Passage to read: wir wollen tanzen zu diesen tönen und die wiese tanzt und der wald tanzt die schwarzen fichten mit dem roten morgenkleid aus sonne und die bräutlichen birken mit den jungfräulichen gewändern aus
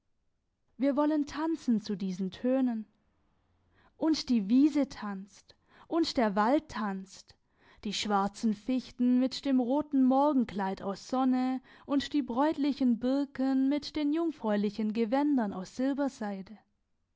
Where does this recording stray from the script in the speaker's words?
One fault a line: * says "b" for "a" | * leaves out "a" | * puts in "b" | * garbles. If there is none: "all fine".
all fine